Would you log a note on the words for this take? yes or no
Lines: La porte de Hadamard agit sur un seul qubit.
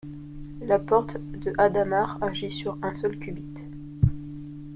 no